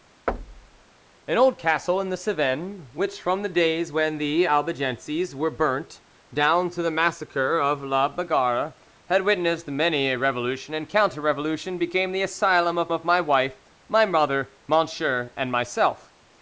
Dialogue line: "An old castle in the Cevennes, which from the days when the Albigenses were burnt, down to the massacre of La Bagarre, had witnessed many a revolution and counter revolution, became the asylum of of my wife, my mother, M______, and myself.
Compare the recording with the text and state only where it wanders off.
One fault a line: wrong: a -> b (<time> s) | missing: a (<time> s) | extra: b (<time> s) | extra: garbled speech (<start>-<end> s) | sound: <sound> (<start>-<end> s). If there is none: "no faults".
sound: thud (0.3-0.8 s)